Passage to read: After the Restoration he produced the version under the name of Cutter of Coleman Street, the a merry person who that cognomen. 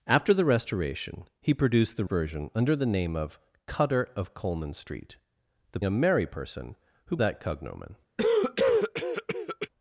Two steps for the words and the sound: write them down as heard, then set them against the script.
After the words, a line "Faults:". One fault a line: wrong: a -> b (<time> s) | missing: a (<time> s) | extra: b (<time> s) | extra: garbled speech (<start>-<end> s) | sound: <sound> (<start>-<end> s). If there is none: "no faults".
After the Restoration he produced the version under the name of Cutter of Coleman Street, the a merry person who that cognomen.
Faults:
sound: cough (8.2-9.7 s)